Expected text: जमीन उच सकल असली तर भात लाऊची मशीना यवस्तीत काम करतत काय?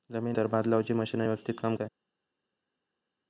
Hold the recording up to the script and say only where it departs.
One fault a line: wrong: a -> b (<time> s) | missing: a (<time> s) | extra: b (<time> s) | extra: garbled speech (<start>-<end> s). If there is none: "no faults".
missing: उच सकल असली (0.4 s)
missing: करतत (1.8 s)